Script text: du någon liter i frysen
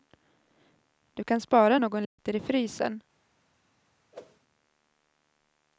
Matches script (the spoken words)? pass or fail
fail